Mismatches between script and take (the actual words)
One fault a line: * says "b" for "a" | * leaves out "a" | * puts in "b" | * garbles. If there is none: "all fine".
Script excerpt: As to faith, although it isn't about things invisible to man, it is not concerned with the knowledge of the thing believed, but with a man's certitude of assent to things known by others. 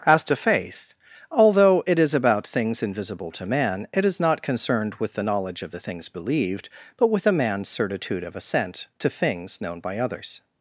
* says "is" for "isn't"
* says "things" for "thing"